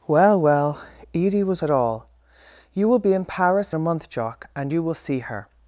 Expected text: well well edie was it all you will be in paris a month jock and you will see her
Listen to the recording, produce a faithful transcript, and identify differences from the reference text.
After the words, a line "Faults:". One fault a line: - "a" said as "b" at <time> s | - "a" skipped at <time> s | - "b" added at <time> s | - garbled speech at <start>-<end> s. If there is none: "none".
well well edie was it all you will be in paris a month jock and you will see her
Faults:
none